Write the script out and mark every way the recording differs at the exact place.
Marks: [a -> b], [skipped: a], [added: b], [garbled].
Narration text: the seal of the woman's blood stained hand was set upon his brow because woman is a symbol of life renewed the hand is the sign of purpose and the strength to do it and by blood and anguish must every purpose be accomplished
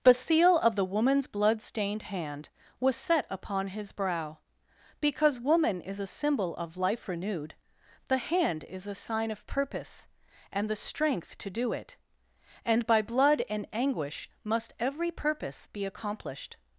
the seal of the woman's blood stained hand was set upon his brow because woman is a symbol of life renewed the hand is [the -> a] sign of purpose and the strength to do it and by blood and anguish must every purpose be accomplished